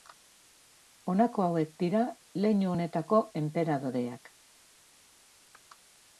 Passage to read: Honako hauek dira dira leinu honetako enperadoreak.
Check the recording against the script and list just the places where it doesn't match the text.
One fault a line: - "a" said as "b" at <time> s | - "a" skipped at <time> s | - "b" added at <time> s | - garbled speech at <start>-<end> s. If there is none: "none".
- "dira" skipped at 2.0 s